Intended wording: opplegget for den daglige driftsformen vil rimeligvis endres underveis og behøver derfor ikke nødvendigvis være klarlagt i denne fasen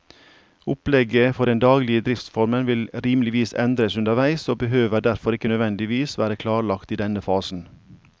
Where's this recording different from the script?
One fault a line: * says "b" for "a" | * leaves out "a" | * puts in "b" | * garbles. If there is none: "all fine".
all fine